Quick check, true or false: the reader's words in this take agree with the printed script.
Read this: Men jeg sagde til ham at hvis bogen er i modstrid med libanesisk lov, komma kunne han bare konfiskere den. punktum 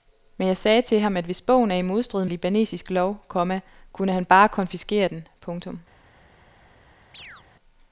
false